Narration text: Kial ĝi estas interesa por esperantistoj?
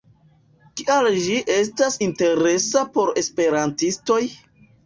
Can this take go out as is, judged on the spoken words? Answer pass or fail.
pass